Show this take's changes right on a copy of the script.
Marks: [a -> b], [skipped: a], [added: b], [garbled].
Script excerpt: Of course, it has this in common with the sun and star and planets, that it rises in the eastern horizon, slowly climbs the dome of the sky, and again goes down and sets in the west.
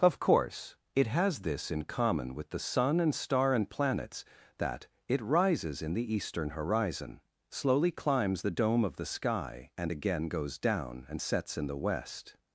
Of course, it has this in common with the sun and star and planets, that it rises in the eastern horizon, slowly climbs the dome of the sky, and again goes down and sets in the west.